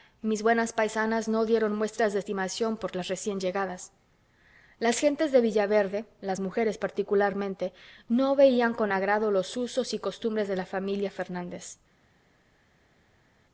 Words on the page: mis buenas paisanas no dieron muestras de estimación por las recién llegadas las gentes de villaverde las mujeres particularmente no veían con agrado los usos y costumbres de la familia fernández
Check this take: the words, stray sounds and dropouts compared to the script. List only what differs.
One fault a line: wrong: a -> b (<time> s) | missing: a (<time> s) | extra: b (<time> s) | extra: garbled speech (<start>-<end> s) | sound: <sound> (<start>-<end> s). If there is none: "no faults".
no faults